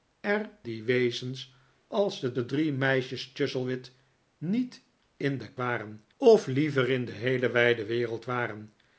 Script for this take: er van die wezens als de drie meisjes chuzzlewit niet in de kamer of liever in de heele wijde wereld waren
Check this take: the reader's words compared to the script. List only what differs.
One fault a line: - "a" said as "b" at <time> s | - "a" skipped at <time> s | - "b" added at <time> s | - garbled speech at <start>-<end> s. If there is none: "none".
- "van" skipped at 0.5 s
- "de" added at 2.3 s
- "kamer" said as "waren" at 5.6 s